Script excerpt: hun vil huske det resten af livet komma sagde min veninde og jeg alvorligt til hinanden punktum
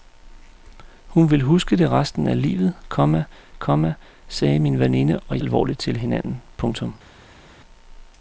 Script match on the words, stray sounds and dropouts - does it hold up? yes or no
no